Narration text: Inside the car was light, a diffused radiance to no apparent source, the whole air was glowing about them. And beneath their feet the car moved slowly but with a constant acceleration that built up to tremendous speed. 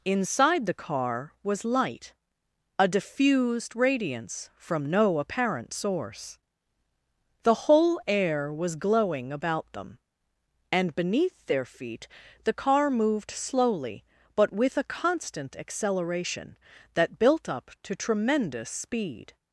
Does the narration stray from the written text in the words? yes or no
yes